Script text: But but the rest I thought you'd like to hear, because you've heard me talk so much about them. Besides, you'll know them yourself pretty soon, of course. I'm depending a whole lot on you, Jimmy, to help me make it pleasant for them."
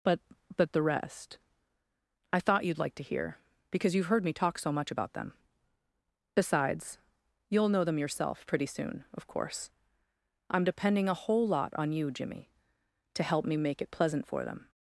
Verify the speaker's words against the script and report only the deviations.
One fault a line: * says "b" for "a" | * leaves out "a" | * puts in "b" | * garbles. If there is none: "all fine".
all fine